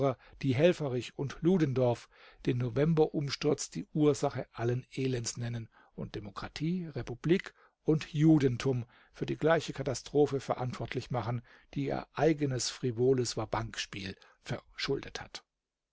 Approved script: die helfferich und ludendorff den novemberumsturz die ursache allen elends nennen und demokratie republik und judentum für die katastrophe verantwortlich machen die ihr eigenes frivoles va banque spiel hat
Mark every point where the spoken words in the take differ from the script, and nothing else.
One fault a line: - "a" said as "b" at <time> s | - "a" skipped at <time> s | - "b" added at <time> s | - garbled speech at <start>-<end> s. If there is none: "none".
- "gleiche" added at 9.4 s
- "verschuldet" added at 14.4 s